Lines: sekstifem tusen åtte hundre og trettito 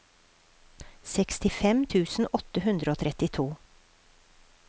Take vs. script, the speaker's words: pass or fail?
pass